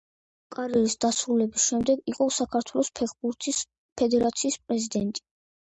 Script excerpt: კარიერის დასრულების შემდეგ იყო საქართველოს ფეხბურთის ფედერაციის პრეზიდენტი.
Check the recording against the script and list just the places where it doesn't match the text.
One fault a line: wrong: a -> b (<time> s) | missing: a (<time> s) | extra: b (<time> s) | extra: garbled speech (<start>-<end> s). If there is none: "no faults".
no faults